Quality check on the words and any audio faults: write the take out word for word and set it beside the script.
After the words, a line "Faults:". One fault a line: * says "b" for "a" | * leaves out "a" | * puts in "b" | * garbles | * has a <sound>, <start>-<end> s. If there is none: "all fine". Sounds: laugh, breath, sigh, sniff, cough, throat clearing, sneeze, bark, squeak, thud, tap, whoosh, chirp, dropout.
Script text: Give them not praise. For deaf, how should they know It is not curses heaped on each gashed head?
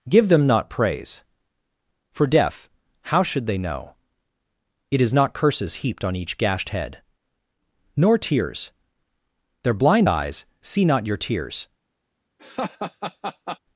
Give them not praise. For deaf, how should they know It is not curses heaped on each gashed head? Nor tears. Their blind eyes see not your tears
Faults:
* puts in "Nor tears Their blind eyes see not your tears"
* has a laugh, 12.4-13.6 s